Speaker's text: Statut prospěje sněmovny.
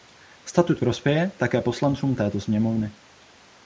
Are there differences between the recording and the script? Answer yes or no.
yes